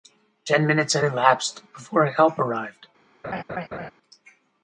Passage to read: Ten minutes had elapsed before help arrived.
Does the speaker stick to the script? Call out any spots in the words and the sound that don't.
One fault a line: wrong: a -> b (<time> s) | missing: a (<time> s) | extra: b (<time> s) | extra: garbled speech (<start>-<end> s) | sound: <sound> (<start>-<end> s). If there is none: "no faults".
sound: laugh (3.2-3.9 s)